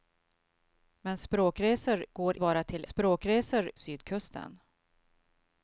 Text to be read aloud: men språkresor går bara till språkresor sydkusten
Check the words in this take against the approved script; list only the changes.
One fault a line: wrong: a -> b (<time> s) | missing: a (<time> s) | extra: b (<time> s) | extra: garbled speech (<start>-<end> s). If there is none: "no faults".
no faults